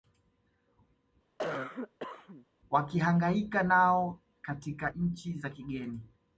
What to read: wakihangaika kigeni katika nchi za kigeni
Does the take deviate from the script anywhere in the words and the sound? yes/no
yes